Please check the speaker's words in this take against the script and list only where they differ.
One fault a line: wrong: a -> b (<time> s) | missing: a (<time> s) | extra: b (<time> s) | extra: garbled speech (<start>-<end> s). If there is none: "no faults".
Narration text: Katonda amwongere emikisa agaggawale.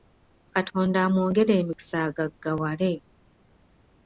no faults